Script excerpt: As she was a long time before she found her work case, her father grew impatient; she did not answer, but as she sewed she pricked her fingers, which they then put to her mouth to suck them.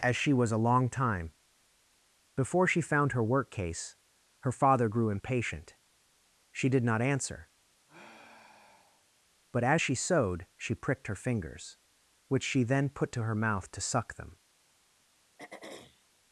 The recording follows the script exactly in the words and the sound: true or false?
false